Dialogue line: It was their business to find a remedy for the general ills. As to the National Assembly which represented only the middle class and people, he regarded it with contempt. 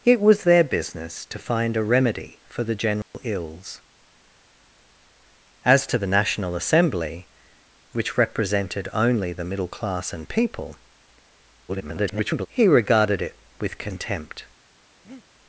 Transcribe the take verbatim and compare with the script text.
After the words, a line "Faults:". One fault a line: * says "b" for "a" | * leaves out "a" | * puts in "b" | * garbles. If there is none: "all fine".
It was their business to find a remedy for the general ills. As to the National Assembly which represented only the middle class and people, [garbled] he regarded it with contempt.
Faults:
* garbles